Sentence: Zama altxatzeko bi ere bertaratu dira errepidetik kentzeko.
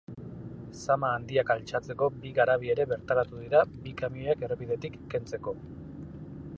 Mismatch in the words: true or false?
true